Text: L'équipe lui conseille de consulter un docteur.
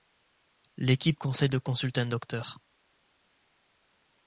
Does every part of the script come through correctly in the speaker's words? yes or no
no